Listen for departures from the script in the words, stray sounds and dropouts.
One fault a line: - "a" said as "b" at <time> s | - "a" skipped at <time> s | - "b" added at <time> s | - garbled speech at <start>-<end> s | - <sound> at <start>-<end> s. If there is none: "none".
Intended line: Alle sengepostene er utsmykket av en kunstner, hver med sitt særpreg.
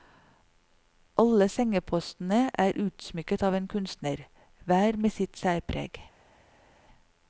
none